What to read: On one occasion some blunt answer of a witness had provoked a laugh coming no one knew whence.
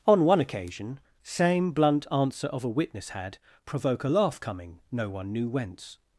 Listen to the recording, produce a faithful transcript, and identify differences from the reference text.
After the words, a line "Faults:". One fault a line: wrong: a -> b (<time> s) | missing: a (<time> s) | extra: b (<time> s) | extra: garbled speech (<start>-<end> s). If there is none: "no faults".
On one occasion same blunt answer of a witness had provoke a laugh coming no one knew whence.
Faults:
wrong: some -> same (1.2 s)
wrong: provoked -> provoke (3.6 s)